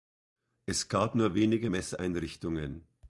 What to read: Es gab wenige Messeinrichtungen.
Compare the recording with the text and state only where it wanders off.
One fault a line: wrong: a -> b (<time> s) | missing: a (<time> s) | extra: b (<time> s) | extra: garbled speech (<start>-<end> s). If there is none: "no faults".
extra: nur (1.1 s)